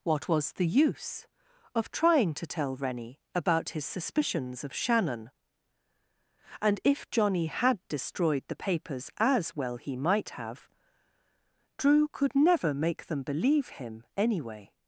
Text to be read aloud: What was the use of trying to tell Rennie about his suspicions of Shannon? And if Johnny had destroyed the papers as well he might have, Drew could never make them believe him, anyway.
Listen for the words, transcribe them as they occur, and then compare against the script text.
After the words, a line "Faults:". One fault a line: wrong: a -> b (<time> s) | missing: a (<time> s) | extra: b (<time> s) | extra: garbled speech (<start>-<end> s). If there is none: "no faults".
What was the use of trying to tell Rennie about his suspicions of Shannon? And if Johnny had destroyed the papers as well he might have, Drew could never make them believe him, anyway.
Faults:
no faults